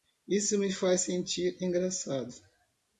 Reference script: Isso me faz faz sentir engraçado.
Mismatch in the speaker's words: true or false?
true